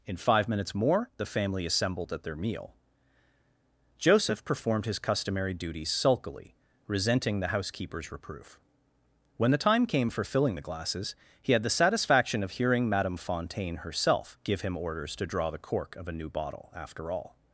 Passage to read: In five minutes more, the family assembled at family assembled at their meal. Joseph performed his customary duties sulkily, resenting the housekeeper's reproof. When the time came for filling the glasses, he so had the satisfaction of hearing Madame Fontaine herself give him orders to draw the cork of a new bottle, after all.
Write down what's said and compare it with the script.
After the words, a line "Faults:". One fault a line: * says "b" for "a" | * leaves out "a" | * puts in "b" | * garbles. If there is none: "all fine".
In five minutes more, the family assembled at their meal. Joseph performed his customary duties sulkily, resenting the housekeeper's reproof. When the time came for filling the glasses, he had the satisfaction of hearing Madame Fontaine herself give him orders to draw the cork of a new bottle, after all.
Faults:
* leaves out "family assembled at"
* leaves out "so"